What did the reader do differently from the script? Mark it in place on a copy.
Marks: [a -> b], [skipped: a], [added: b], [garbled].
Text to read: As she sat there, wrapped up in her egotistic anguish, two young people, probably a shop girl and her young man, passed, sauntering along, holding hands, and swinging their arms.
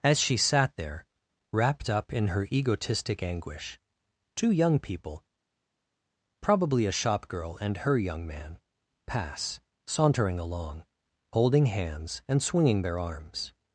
As she sat there, wrapped up in her egotistic anguish, two young people, probably a shop girl and her young man, [passed, -> pass] sauntering along, holding hands, and swinging their arms.